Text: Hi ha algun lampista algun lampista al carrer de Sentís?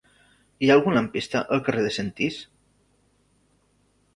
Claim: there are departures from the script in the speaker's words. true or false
true